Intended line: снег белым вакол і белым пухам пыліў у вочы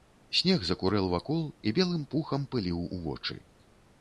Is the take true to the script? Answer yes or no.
no